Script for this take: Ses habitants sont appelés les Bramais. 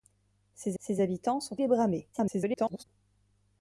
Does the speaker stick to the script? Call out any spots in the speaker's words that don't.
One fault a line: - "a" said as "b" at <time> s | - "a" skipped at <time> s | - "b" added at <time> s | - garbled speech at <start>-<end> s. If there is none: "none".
- "ses" added at 0.8 s
- "appelés" skipped at 1.6 s
- garbled speech at 2.1-2.8 s